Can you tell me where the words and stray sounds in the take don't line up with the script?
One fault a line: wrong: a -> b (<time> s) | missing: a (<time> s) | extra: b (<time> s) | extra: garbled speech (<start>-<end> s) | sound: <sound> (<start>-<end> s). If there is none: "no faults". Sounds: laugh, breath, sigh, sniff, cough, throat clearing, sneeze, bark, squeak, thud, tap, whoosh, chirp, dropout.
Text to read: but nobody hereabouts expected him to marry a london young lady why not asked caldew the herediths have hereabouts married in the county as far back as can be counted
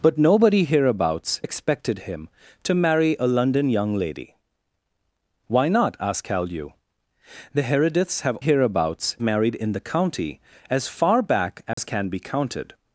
sound: dropout (11.7-11.8 s)